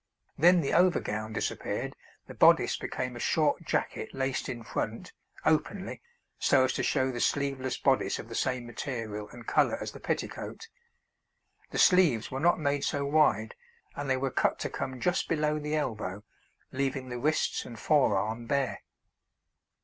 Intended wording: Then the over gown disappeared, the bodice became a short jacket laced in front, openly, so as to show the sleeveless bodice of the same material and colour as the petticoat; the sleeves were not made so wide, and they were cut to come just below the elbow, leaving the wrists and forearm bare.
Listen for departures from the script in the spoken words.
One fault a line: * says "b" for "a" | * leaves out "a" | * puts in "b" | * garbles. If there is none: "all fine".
all fine